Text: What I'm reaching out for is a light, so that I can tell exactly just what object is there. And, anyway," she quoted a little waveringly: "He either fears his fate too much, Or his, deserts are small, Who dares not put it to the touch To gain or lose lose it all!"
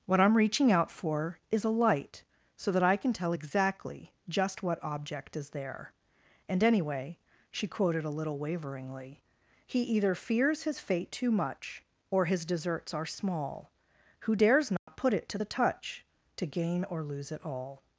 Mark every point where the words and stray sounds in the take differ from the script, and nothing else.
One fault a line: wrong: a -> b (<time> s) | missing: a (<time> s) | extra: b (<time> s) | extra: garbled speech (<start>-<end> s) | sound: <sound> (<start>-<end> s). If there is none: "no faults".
sound: dropout (14.8-14.9 s)
missing: lose (17.3 s)